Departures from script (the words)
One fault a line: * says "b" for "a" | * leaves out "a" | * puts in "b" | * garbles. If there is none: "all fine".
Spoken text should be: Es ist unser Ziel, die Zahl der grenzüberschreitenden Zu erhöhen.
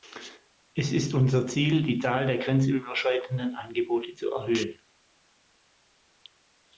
* puts in "Angebote"